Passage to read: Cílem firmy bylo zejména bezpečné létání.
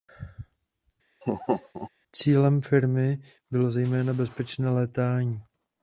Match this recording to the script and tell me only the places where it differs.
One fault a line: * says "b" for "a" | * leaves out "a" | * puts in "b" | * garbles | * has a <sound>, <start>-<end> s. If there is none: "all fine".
* has a laugh, 1.2-1.9 s